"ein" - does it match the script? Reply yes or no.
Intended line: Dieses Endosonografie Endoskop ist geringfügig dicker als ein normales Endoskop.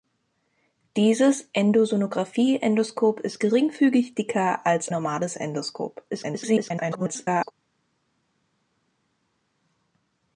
no